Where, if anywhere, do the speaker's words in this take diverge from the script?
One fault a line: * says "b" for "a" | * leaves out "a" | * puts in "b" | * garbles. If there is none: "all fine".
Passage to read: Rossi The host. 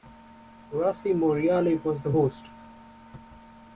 * puts in "Morreale was"